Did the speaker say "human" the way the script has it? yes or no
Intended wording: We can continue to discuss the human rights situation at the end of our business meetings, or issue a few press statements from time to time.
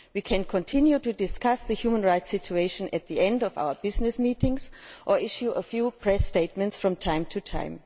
yes